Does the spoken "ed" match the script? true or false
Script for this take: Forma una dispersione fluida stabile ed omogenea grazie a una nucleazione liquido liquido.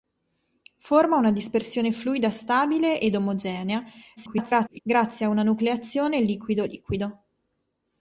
true